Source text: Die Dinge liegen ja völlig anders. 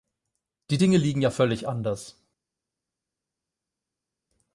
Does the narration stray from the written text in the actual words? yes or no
no